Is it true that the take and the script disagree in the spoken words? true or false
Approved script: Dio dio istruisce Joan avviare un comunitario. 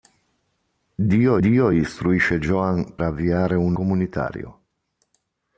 false